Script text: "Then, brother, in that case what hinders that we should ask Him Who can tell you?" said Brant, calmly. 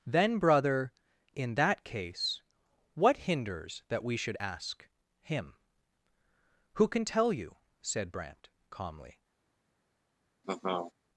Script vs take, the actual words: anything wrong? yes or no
no